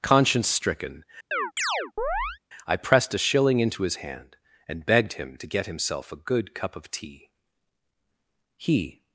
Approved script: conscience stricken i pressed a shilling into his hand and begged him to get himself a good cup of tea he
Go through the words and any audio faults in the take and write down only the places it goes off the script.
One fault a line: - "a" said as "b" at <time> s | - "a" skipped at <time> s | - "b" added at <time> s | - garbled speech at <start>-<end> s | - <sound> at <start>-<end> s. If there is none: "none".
- chirp at 1.3-2.4 s